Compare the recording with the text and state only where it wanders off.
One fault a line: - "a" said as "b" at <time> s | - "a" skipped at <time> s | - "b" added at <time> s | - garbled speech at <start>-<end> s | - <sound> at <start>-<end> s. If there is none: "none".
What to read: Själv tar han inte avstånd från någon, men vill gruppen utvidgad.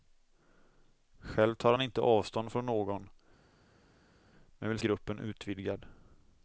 none